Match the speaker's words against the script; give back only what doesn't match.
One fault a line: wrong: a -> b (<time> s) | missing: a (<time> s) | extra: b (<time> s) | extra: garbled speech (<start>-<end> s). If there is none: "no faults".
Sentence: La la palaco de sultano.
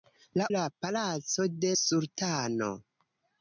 no faults